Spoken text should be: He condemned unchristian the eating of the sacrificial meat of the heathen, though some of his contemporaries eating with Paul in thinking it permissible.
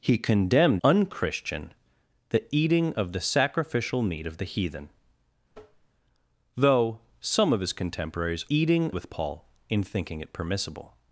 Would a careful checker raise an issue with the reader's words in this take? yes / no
no